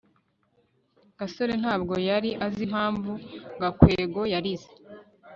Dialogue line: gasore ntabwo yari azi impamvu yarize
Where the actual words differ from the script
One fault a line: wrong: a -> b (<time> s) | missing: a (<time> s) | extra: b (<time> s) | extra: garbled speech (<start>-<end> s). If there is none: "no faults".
extra: gakwego (3.6 s)